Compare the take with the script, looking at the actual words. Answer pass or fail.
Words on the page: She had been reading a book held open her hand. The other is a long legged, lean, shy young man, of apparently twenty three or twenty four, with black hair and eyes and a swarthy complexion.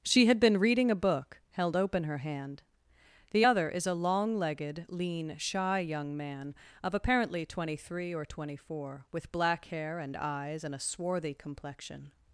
pass